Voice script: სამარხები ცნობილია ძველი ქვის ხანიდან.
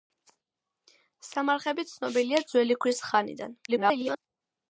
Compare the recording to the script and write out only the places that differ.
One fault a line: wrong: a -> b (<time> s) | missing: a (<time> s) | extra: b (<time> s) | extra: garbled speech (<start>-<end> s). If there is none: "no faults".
extra: garbled speech (3.7-4.2 s)